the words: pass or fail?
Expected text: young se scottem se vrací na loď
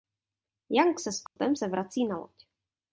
pass